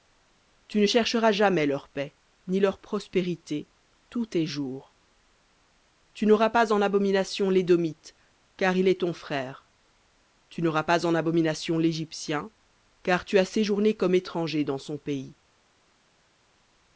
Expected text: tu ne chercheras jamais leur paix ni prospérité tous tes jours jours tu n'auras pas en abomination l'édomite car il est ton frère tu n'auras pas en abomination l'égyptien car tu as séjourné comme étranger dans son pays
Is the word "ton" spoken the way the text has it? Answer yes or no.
yes